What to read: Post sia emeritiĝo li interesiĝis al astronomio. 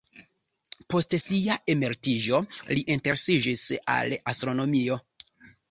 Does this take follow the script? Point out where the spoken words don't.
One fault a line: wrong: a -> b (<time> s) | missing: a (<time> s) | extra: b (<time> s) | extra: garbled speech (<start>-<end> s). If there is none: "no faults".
no faults